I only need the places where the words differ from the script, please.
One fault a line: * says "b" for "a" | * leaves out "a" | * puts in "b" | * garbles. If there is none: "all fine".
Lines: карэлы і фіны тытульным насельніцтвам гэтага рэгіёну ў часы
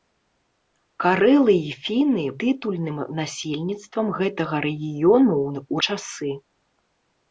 all fine